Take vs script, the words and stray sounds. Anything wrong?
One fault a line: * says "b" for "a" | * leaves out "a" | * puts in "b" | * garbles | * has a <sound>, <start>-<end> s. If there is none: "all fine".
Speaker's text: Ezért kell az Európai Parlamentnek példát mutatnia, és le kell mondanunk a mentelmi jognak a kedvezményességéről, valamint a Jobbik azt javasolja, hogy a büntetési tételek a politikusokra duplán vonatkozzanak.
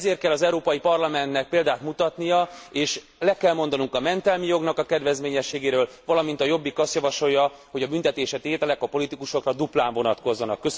all fine